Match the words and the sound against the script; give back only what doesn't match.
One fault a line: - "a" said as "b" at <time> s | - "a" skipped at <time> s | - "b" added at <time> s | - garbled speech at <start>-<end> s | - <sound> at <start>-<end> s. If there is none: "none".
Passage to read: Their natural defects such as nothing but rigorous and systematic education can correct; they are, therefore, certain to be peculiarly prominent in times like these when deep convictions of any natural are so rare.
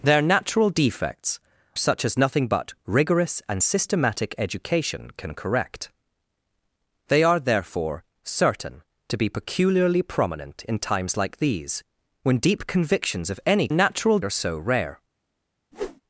- whoosh at 15.7-16.0 s